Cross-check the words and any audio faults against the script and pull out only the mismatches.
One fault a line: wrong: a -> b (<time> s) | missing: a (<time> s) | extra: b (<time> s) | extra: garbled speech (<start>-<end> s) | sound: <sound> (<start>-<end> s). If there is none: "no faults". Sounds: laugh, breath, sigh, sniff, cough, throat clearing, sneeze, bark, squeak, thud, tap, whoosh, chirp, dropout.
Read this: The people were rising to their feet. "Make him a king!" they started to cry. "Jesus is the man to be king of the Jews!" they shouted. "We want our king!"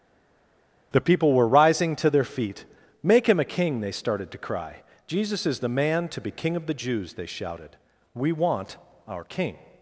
no faults